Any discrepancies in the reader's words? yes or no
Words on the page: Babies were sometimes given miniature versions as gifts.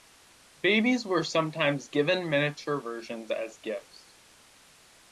no